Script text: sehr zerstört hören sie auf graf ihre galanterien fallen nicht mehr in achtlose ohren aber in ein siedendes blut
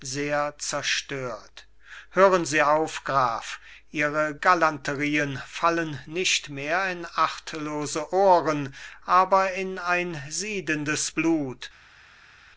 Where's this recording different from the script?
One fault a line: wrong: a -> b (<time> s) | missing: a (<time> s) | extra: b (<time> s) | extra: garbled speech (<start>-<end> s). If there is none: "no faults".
no faults